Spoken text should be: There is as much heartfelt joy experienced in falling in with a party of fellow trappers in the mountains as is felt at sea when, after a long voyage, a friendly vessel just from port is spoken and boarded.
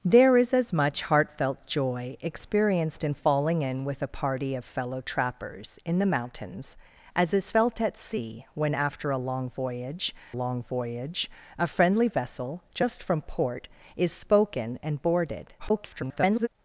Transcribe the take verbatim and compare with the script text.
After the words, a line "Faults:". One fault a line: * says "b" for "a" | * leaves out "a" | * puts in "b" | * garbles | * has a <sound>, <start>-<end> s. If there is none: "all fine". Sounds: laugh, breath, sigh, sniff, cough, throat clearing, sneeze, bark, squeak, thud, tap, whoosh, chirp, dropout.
There is as much heartfelt joy experienced in falling in with a party of fellow trappers in the mountains as is felt at sea when, after a long voyage long voyage, a friendly vessel just from port is spoken and boarded. [garbled]
Faults:
* puts in "long voyage"
* garbles